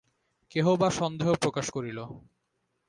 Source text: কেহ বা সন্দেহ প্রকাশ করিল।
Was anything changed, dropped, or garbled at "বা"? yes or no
no